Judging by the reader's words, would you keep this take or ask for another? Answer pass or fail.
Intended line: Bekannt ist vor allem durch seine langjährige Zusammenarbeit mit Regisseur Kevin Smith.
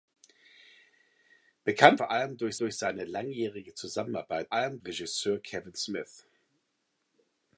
fail